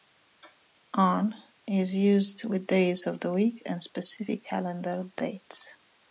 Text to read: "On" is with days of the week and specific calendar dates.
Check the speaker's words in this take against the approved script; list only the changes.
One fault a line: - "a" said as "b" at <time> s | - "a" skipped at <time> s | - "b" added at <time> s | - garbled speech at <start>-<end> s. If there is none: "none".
- "used" added at 1.9 s